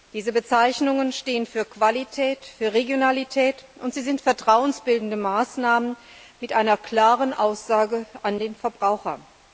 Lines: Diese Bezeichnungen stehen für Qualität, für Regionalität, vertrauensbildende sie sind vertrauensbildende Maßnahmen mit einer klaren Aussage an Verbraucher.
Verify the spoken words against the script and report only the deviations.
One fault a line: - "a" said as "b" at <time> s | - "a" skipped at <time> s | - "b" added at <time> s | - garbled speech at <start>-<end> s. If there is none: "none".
- "vertrauensbildende" said as "und" at 3.8 s
- "den" added at 8.4 s